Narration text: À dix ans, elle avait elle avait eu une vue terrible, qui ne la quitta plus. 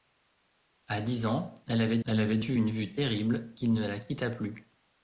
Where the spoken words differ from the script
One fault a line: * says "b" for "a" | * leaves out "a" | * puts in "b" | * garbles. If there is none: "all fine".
all fine